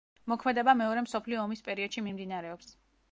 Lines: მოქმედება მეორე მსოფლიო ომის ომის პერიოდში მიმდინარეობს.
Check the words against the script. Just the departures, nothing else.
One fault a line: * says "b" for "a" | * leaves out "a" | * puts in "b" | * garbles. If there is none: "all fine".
* leaves out "ომის"